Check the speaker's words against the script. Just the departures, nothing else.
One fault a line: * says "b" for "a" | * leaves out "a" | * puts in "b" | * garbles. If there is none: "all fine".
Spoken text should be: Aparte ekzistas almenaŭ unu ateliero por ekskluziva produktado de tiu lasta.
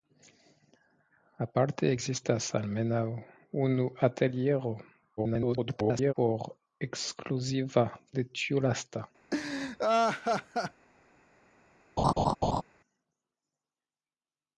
* garbles
* leaves out "produktado"